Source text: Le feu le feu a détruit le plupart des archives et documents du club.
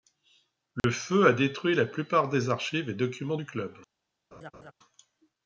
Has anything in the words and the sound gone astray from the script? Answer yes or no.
yes